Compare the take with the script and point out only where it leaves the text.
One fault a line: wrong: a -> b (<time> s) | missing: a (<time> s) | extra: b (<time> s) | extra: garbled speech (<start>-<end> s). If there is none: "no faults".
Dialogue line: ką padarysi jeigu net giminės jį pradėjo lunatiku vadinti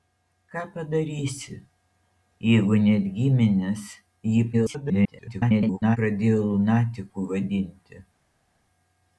extra: garbled speech (4.5-6.0 s)